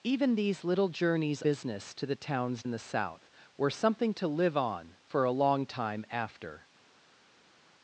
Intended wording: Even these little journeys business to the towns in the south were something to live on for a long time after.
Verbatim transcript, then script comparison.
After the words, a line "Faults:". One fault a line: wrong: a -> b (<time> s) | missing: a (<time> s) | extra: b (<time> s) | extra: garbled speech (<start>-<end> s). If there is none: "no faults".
Even these little journeys business to the towns in the south were something to live on for a long time after.
Faults:
no faults